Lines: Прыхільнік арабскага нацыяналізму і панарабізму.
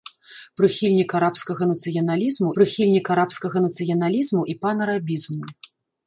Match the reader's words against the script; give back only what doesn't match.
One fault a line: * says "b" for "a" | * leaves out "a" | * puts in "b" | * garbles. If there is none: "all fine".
* puts in "прыхільнік арабскага нацыяналізму"